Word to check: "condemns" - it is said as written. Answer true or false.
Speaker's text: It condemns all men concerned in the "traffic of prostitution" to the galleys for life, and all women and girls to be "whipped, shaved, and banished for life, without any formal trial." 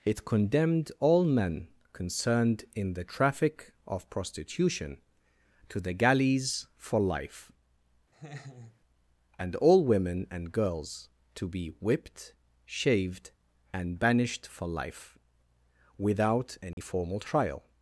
false